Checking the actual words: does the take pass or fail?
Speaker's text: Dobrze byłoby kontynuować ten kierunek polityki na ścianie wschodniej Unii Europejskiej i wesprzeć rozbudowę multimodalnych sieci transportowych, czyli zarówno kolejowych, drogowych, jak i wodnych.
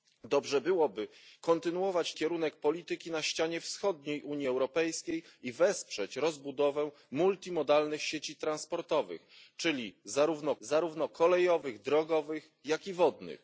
fail